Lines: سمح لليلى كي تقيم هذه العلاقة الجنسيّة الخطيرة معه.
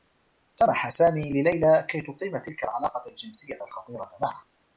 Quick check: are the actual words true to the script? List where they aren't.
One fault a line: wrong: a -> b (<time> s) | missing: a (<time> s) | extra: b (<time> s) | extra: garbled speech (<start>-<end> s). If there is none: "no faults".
extra: سامي (0.9 s)
wrong: هذه -> تلك (2.4 s)